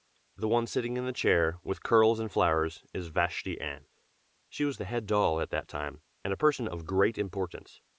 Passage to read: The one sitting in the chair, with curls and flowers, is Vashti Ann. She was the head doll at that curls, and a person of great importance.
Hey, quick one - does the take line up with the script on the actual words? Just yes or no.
no